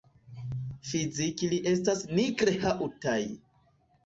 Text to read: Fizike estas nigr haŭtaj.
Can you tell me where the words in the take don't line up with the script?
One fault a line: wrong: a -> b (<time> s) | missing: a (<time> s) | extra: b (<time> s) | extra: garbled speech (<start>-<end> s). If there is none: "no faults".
extra: ili (1.5 s)